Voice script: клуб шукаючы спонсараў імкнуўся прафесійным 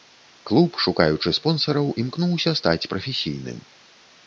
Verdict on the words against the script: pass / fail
fail